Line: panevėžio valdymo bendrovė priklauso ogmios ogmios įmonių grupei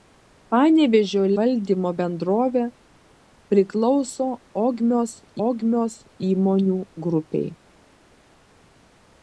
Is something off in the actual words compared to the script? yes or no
no